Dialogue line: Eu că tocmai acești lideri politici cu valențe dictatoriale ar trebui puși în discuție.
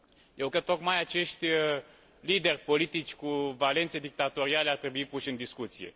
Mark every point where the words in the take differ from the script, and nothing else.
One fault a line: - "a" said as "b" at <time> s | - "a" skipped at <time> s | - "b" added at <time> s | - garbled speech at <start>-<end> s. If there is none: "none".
none